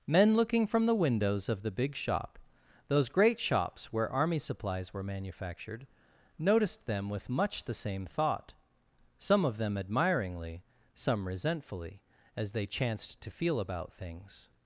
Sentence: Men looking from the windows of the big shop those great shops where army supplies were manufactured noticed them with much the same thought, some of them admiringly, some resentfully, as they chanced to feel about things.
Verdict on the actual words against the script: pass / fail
pass